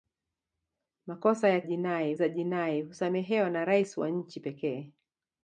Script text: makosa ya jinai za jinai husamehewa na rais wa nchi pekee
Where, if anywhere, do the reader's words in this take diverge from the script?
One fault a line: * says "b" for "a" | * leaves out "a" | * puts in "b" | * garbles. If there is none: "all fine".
all fine